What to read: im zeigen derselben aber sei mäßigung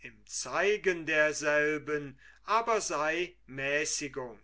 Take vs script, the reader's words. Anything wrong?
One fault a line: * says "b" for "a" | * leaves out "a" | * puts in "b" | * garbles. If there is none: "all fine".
all fine